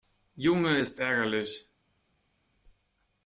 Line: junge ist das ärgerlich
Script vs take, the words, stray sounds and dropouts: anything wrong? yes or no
yes